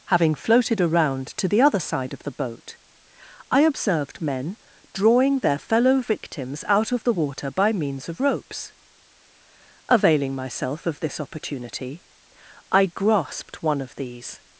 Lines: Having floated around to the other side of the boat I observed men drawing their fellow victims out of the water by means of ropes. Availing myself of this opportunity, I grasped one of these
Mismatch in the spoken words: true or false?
false